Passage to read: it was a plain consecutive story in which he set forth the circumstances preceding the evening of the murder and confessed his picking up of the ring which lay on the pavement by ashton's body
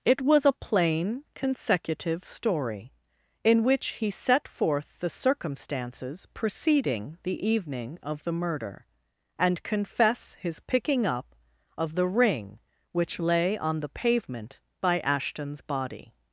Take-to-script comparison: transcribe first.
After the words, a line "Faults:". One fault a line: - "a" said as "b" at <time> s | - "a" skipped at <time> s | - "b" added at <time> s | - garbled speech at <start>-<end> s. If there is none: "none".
it was a plain consecutive story in which he set forth the circumstances preceding the evening of the murder and confess his picking up of the ring which lay on the pavement by ashton's body
Faults:
- "confessed" said as "confess" at 9.6 s